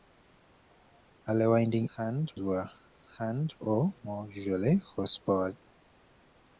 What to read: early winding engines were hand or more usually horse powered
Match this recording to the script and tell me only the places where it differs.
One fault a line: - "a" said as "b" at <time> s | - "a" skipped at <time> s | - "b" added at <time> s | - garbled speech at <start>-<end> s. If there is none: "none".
- "engines" said as "hand" at 2.0 s